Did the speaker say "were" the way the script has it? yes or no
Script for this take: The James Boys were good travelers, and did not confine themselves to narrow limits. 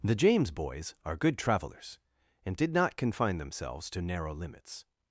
no